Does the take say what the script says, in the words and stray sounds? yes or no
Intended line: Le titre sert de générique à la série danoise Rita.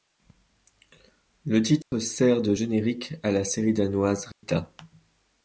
no